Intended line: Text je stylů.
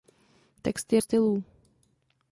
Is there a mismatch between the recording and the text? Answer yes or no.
no